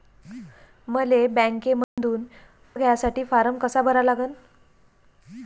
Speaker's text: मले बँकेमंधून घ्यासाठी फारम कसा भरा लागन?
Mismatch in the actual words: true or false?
false